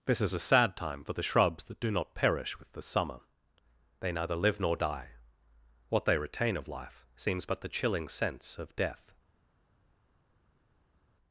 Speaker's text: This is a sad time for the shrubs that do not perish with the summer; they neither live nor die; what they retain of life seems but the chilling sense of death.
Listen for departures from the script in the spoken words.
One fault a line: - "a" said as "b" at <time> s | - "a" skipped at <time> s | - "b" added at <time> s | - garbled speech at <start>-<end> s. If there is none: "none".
none